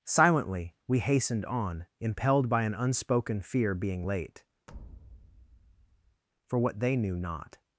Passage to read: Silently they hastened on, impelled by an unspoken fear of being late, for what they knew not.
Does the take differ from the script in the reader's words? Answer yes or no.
yes